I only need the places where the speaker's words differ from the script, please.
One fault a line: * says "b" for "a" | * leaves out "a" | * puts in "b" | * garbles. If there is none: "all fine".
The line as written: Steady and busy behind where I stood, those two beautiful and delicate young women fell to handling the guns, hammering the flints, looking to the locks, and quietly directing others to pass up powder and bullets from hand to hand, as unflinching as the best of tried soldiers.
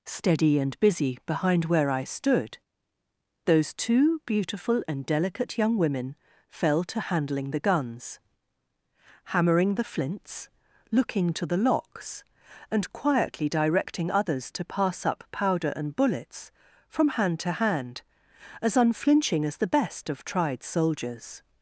all fine